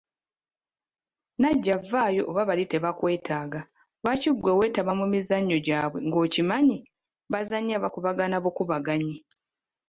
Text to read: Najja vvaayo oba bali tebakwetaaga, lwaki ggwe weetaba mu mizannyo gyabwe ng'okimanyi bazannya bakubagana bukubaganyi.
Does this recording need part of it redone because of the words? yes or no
no